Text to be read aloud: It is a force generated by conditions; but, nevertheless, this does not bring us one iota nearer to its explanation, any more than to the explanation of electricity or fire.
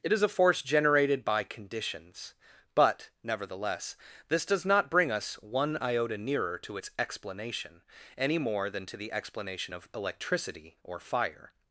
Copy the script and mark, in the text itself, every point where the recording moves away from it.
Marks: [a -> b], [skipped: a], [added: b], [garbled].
It is a force generated by conditions; but, nevertheless, this does not bring us one iota nearer to its explanation, any more than to the explanation of electricity or fire.